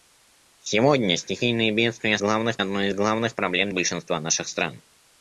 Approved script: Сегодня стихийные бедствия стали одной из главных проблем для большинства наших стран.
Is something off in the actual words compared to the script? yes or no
yes